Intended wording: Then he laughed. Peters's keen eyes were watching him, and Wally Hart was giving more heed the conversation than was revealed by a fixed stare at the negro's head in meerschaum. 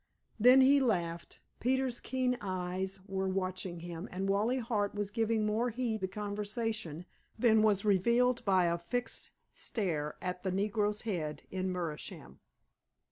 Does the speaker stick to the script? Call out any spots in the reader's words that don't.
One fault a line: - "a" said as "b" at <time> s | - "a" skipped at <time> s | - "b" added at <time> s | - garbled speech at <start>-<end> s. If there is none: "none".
none